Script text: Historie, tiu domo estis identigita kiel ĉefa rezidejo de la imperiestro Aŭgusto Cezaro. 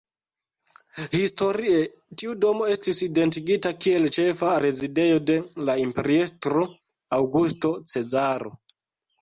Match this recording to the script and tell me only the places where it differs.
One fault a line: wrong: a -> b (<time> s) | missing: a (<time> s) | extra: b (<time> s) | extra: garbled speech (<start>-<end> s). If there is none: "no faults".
no faults